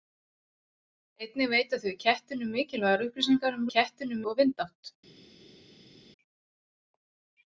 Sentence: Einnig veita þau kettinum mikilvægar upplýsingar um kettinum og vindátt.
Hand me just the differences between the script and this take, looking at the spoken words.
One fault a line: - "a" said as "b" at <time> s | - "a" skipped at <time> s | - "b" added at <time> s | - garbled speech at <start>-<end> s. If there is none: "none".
none